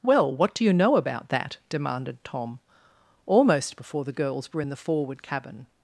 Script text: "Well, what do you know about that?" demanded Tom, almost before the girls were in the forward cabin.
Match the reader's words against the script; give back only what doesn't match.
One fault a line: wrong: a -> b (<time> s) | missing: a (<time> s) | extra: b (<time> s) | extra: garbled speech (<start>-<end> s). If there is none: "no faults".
no faults